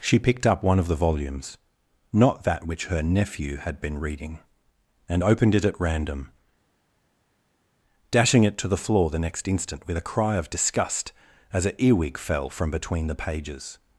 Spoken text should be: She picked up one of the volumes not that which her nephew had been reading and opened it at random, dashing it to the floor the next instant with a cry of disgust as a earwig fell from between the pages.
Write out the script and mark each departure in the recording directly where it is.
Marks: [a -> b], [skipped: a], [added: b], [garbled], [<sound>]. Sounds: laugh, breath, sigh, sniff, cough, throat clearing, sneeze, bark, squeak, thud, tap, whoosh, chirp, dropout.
She picked up one of the volumes not that which her nephew had been reading and opened it at random, dashing it to the floor the next instant with a cry of disgust as a earwig fell from between the pages.